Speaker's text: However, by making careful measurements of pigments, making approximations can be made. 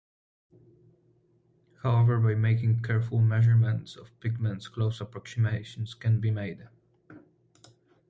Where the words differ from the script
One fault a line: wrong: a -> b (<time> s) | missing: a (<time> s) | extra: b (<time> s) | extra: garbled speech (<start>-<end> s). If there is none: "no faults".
wrong: making -> close (4.7 s)